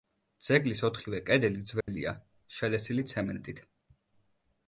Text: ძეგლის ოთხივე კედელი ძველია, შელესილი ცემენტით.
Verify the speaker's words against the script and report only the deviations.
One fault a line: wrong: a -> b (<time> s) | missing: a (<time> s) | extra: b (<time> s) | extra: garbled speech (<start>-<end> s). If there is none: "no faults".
no faults